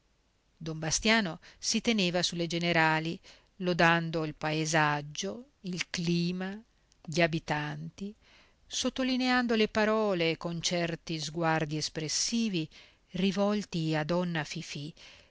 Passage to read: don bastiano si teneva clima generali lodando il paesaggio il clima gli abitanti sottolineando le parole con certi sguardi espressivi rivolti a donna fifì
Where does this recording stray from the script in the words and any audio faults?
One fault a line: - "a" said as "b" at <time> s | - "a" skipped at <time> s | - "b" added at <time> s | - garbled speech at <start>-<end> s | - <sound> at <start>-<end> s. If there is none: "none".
- "clima" said as "sulle" at 2.2 s